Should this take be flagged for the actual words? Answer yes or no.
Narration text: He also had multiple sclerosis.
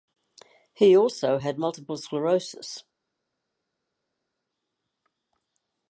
no